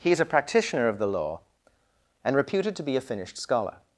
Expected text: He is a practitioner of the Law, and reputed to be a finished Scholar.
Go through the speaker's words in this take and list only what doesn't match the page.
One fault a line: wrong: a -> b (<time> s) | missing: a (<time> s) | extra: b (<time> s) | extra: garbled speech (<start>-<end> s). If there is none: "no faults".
no faults